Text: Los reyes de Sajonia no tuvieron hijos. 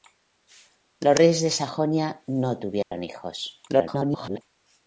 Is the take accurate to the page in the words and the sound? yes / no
no